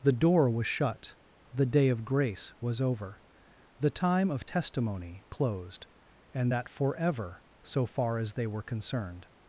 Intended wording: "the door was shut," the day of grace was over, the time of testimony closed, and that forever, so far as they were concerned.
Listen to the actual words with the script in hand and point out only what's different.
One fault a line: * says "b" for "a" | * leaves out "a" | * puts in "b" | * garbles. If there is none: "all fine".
all fine